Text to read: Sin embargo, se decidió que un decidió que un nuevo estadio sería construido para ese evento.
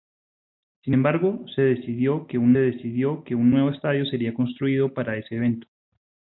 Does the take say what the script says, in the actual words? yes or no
yes